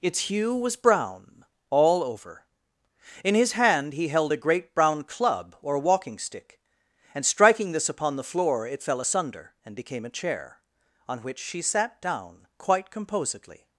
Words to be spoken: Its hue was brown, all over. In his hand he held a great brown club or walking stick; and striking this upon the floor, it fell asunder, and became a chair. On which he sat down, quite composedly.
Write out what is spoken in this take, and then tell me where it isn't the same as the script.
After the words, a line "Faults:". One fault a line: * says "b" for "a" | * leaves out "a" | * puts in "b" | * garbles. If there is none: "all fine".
Its hue was brown, all over. In his hand he held a great brown club or walking stick; and striking this upon the floor, it fell asunder, and became a chair. On which she sat down, quite composedly.
Faults:
* says "she" for "he"